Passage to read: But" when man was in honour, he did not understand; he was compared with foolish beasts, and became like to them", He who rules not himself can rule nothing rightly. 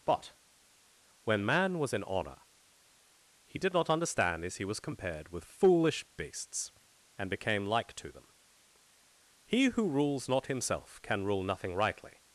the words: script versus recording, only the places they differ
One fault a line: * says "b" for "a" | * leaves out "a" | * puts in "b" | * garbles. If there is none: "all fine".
* puts in "as"